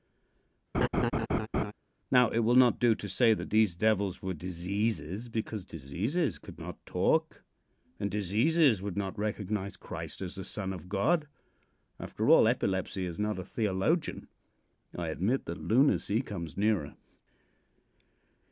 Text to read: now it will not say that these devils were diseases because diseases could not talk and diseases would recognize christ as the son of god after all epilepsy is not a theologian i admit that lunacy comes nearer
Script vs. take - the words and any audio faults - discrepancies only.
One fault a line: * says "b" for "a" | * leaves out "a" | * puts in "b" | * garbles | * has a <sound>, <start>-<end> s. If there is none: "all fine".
* has a laugh, 0.7-1.7 s
* puts in "do to"
* puts in "not"